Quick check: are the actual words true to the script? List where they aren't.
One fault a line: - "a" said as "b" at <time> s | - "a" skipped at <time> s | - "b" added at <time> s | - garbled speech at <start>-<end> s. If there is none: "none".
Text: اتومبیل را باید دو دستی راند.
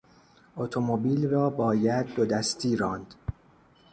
none